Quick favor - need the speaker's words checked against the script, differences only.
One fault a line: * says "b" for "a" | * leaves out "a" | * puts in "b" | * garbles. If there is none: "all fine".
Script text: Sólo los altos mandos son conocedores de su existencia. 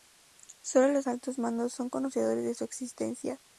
all fine